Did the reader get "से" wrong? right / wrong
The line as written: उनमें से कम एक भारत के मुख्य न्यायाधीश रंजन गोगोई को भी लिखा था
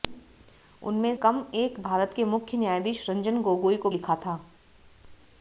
wrong